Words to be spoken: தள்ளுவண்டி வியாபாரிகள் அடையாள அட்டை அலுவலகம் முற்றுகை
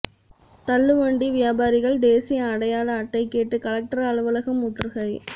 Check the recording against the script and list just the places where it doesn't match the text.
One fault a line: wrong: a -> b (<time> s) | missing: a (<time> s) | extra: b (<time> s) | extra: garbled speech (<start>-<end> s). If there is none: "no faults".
extra: தேசிய (2.0 s)
extra: கேட்டு கலெக்டர் (3.3 s)